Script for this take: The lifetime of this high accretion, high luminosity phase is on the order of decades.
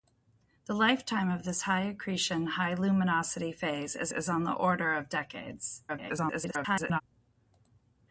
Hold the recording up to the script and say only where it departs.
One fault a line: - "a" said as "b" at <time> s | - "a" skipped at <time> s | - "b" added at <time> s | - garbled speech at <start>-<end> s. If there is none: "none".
- "is" added at 4.1 s
- garbled speech at 5.9-7.0 s